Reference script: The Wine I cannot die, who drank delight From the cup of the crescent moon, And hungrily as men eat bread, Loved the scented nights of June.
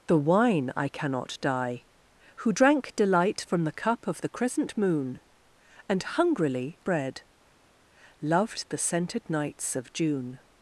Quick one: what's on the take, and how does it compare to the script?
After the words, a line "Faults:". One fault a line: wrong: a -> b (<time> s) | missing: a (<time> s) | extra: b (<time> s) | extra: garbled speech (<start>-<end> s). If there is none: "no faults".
The Wine I cannot die, who drank delight From the cup of the crescent moon, And hungrily bread, Loved the scented nights of June.
Faults:
missing: as men eat (6.8 s)